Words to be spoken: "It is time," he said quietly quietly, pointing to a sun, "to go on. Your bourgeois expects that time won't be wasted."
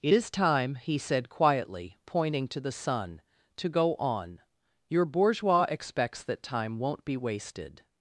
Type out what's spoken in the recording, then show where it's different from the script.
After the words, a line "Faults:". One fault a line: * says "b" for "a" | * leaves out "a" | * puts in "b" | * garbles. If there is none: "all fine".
"It is time," he said quietly, pointing to the sun, "to go on. Your bourgeois expects that time won't be wasted."
Faults:
* leaves out "quietly"
* says "the" for "a"